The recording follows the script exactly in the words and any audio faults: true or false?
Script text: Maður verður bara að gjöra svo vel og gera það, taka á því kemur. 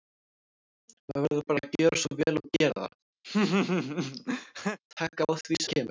false